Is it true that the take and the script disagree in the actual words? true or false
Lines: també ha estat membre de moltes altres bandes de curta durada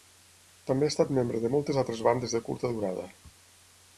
false